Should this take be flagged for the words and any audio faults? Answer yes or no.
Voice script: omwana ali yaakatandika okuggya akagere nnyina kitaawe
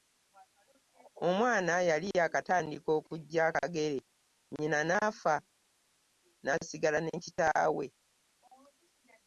yes